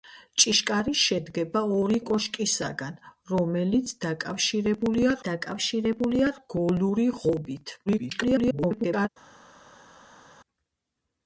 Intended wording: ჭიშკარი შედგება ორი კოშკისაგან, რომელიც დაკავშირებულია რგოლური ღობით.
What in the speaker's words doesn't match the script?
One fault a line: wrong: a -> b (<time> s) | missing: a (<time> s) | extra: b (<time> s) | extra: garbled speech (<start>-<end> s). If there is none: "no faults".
extra: დაკავშირებულია (5.3 s)
extra: garbled speech (7.9-9.1 s)